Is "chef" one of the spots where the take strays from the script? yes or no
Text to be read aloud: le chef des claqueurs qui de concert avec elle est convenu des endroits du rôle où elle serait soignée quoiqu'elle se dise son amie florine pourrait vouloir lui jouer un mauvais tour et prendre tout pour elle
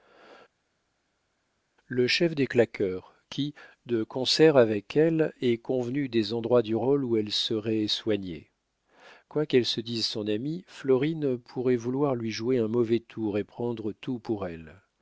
no